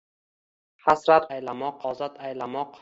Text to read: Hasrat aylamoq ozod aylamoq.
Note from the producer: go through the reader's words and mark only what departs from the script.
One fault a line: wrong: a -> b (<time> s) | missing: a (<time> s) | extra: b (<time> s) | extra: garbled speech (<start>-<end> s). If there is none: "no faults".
no faults